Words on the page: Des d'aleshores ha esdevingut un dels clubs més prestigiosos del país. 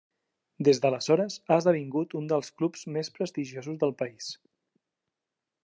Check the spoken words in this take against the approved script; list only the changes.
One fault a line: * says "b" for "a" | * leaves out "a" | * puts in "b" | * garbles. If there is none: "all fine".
all fine